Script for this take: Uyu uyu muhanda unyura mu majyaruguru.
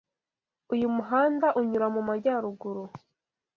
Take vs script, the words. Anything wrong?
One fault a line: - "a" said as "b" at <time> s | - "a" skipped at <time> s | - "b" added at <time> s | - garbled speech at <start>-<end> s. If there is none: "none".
- "uyu" skipped at 0.9 s